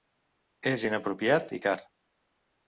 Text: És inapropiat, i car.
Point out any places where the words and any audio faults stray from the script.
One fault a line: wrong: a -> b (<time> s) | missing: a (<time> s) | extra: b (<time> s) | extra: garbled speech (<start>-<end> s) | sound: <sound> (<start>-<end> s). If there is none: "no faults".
no faults